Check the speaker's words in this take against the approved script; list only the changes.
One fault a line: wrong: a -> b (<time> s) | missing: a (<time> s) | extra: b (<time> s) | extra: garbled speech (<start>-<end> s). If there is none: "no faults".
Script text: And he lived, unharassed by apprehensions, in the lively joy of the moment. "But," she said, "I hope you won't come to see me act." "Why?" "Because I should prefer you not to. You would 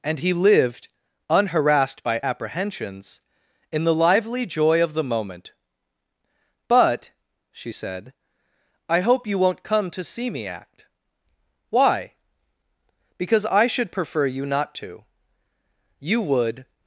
no faults